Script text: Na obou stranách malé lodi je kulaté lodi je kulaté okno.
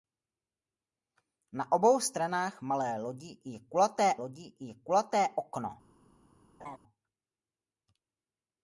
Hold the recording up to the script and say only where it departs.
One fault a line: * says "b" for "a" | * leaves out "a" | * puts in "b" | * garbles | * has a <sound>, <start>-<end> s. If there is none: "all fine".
* has a laugh, 6.6-6.8 s